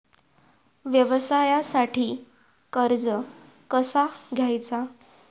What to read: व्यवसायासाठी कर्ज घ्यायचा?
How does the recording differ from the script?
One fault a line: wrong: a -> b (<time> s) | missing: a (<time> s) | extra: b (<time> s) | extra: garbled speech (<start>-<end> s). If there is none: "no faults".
extra: कसा (3.7 s)